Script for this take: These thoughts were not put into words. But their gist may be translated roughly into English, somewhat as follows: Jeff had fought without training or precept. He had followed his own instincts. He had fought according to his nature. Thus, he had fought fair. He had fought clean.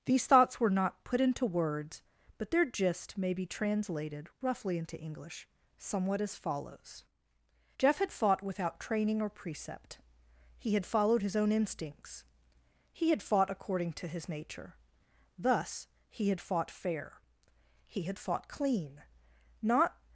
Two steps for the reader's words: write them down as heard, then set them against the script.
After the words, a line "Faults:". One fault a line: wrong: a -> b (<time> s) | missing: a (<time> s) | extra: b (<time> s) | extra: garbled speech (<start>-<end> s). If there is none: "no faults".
These thoughts were not put into words. But their gist may be translated roughly into English, somewhat as follows: Jeff had fought without training or precept. He had followed his own instincts. He had fought according to his nature. Thus, he had fought fair. He had fought clean. Not
Faults:
extra: Not (19.6 s)